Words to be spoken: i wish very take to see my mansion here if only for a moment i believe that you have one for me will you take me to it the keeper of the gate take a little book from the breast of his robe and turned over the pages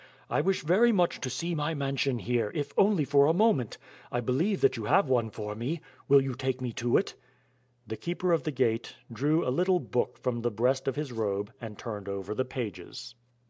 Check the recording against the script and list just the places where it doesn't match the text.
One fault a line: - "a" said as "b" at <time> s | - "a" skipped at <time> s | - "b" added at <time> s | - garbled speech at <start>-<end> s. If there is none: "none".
- "take" said as "much" at 0.9 s
- "take" said as "drew" at 9.1 s